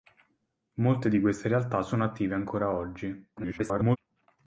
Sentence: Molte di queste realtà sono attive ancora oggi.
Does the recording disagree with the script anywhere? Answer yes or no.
yes